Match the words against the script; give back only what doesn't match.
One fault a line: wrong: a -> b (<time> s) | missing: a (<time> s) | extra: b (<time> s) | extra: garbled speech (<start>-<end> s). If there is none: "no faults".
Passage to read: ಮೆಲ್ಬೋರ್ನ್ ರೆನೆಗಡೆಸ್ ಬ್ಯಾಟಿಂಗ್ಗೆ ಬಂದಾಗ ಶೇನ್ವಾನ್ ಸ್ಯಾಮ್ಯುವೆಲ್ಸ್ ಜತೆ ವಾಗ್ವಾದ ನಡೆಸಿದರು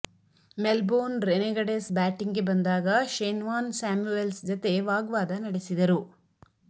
no faults